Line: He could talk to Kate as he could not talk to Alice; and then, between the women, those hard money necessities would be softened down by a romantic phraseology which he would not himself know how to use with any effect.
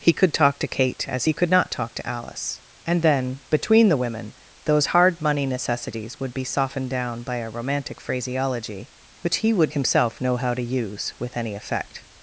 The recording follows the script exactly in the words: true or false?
false